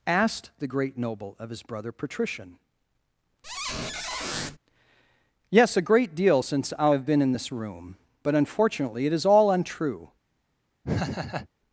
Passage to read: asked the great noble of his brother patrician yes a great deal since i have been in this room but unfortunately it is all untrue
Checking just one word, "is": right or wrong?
right